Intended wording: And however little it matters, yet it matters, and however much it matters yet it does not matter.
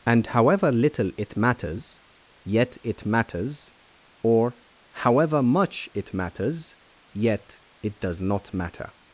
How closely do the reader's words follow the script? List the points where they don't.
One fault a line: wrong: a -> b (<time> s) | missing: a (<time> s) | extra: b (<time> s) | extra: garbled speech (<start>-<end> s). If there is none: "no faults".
wrong: and -> or (4.2 s)